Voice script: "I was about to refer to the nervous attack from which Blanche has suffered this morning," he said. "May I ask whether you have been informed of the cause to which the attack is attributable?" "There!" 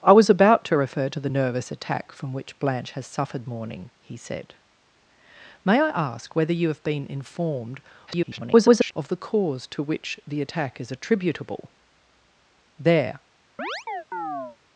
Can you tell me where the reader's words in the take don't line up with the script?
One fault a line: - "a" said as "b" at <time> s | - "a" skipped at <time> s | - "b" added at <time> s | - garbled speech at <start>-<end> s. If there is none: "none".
- "this" skipped at 3.5 s
- garbled speech at 8.1-8.9 s